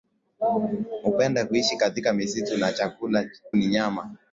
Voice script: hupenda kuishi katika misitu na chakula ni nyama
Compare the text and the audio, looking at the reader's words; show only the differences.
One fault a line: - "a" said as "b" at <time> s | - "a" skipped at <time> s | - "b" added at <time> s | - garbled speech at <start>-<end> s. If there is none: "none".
none